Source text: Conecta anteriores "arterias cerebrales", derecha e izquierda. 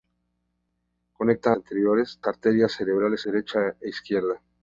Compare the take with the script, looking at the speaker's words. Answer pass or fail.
pass